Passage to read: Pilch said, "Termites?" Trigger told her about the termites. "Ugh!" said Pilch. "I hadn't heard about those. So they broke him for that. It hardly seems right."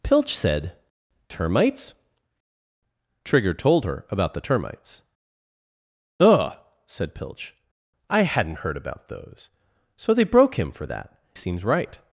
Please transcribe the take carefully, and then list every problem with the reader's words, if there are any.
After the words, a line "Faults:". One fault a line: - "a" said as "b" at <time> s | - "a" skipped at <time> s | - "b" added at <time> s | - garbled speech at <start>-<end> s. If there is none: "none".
Pilch said, "Termites?" Trigger told her about the termites. "Ugh!" said Pilch. "I hadn't heard about those. So they broke him for that. Seems right."
Faults:
- "It hardly" skipped at 11.2 s